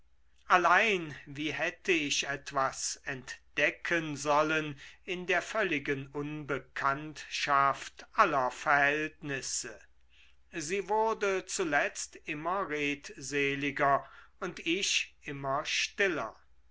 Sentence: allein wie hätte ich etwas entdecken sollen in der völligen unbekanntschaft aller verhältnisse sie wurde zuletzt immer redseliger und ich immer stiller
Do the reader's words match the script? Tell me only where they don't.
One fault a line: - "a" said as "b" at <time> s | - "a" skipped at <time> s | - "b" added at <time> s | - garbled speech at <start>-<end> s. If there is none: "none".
none